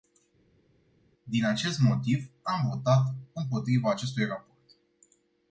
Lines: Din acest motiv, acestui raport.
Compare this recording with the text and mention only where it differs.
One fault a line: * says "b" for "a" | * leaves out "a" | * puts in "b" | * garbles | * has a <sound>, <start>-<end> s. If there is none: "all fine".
* puts in "am votat împotriva"